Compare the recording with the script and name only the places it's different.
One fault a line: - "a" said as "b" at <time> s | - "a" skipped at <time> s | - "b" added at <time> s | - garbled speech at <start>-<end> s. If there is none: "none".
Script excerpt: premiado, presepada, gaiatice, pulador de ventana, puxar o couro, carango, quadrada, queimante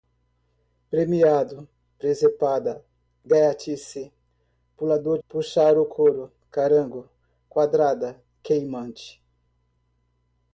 - "de ventana" skipped at 5.2 s